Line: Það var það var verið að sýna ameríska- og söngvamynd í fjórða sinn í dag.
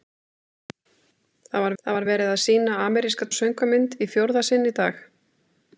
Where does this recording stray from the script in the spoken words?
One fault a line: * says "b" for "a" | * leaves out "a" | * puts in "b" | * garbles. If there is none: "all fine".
all fine